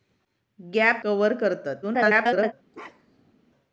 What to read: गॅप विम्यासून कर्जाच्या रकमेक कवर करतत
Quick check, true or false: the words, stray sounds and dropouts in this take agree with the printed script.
false